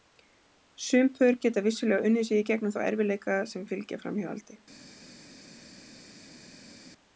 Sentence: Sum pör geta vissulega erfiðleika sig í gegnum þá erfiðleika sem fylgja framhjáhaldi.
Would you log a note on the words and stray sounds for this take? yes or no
yes